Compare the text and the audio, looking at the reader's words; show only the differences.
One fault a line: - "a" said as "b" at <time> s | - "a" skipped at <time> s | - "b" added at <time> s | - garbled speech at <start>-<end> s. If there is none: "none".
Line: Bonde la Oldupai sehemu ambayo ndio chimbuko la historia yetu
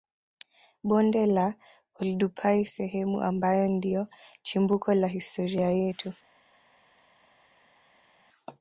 none